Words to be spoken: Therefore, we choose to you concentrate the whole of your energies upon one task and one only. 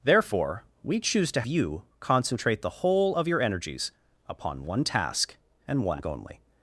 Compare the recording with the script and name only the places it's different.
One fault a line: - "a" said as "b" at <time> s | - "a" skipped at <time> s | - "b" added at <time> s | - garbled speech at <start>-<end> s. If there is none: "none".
none